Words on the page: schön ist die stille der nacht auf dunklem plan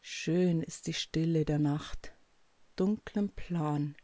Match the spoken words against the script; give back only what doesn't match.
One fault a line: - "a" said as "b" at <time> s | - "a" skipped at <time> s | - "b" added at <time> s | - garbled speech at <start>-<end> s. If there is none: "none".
- "auf" skipped at 2.1 s